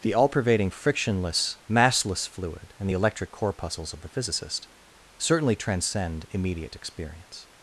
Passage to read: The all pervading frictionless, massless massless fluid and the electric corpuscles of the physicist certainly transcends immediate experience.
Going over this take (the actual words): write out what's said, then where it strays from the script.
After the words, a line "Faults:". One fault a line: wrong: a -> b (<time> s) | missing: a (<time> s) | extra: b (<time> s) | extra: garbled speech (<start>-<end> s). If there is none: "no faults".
The all pervading frictionless, massless fluid and the electric corpuscles of the physicist certainly transcend immediate experience.
Faults:
missing: massless (2.3 s)
wrong: transcends -> transcend (5.6 s)